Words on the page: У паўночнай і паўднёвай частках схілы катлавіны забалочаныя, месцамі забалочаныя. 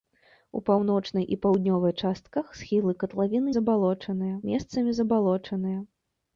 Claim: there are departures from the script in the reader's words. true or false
false